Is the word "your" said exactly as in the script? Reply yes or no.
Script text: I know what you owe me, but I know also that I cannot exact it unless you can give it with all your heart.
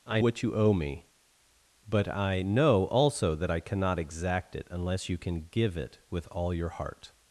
yes